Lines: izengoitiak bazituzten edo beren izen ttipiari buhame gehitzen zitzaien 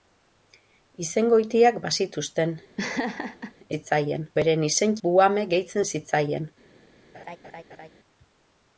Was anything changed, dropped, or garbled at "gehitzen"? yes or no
no